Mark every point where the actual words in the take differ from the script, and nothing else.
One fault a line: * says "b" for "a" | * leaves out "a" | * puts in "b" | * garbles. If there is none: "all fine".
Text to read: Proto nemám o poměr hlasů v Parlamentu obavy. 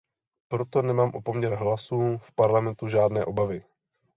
* puts in "žádné"